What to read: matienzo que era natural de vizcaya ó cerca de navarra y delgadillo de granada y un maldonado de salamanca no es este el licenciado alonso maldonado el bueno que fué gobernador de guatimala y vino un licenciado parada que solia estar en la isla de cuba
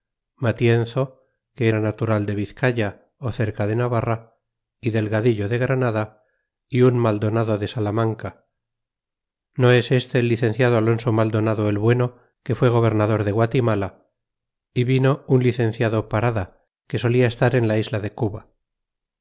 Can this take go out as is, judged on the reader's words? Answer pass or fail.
pass